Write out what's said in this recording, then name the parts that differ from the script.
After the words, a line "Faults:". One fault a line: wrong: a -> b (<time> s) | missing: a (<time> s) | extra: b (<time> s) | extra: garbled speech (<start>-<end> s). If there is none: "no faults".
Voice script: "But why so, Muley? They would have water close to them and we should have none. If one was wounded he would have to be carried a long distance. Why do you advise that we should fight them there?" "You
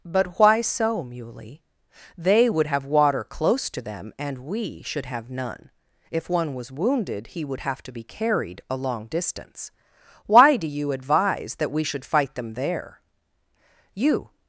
"But why so, Muley? They would have water close to them and we should have none. If one was wounded he would have to be carried a long distance. Why do you advise that we should fight them there?" "You
Faults:
no faults